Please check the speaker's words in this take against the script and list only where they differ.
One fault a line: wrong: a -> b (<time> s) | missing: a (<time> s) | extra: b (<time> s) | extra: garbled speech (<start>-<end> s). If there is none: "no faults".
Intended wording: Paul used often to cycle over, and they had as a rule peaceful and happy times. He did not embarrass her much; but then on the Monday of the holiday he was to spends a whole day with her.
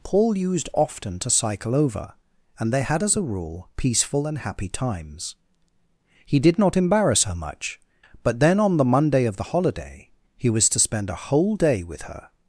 wrong: spends -> spend (10.8 s)